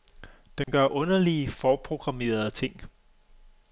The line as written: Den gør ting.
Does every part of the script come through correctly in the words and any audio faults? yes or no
no